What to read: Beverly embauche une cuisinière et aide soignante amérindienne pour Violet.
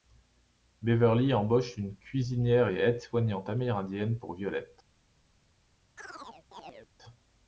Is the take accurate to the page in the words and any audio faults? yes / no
no